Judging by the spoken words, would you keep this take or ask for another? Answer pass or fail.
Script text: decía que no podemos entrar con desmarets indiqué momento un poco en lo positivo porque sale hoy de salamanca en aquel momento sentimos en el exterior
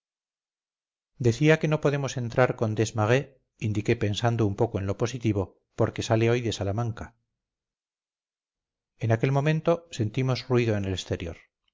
fail